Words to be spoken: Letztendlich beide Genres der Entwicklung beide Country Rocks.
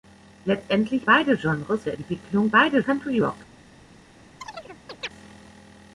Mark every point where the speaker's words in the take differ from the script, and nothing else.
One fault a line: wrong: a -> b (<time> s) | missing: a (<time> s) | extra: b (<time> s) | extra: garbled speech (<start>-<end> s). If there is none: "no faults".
no faults